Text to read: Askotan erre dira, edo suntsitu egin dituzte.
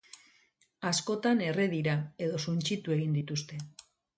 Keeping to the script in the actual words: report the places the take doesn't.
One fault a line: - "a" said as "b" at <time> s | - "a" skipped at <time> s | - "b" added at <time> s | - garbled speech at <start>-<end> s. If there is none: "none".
none